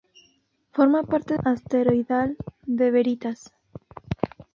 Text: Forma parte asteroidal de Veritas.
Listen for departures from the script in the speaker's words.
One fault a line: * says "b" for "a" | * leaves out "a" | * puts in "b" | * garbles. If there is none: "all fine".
all fine